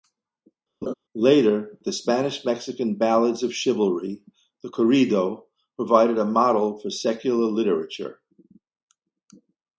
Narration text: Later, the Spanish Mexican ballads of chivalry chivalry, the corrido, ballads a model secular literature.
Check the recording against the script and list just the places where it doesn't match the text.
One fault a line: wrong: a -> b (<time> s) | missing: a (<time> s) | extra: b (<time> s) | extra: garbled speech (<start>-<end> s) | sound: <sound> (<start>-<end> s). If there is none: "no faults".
sound: laugh (0.8-0.9 s)
missing: chivalry (4.2 s)
wrong: ballads -> provided (5.8 s)
extra: for (6.8 s)